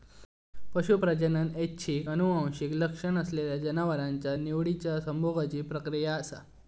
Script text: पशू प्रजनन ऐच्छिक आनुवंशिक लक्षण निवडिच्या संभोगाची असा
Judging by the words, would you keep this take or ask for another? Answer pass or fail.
fail